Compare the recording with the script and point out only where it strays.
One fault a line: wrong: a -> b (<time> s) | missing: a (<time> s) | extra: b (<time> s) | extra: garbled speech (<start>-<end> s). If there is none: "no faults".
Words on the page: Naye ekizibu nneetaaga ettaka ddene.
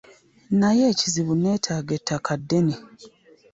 no faults